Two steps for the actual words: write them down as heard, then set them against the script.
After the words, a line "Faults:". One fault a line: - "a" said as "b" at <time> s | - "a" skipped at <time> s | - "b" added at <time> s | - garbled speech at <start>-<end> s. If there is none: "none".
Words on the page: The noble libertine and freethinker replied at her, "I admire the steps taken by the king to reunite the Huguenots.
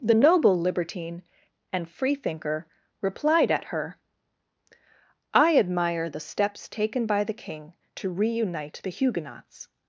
The noble libertine and freethinker replied at her, "I admire the steps taken by the king to reunite the Huguenots.
Faults:
none